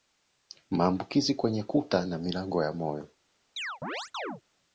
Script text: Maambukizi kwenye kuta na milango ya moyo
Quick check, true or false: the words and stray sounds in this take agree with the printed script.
false